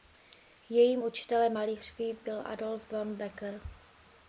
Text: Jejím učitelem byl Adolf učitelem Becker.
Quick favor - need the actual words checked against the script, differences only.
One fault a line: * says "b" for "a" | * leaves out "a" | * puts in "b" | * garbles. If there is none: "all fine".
* puts in "malířství"
* says "von" for "učitelem"